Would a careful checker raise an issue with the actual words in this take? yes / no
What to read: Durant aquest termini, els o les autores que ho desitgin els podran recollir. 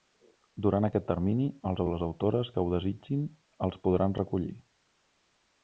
no